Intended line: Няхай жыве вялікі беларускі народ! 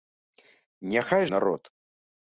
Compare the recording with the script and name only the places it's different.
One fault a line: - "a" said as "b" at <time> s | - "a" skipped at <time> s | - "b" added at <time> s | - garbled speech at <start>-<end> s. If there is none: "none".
- "жыве вялікі беларускі" skipped at 1.2 s